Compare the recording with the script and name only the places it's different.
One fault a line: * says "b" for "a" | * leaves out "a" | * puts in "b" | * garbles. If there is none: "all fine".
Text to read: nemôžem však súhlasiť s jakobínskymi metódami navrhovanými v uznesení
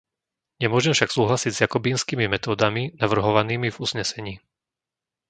all fine